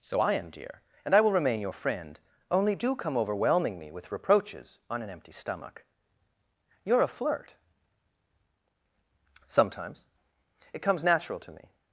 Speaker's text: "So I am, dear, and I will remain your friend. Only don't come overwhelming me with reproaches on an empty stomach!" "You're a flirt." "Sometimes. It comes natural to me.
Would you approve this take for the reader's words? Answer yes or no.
no